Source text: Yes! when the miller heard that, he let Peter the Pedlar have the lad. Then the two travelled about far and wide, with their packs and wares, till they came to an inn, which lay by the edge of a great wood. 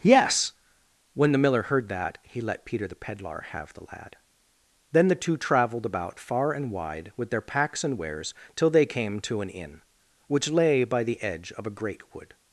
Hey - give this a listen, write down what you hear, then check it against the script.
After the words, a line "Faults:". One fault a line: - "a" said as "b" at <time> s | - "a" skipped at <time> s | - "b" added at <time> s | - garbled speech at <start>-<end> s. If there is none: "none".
Yes! when the miller heard that, he let Peter the Pedlar have the lad. Then the two travelled about far and wide, with their packs and wares, till they came to an inn, which lay by the edge of a great wood.
Faults:
none